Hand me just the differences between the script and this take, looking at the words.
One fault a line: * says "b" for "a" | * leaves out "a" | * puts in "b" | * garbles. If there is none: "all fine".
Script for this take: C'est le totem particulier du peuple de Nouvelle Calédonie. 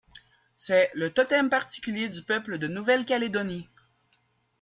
all fine